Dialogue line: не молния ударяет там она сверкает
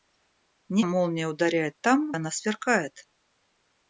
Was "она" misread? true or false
false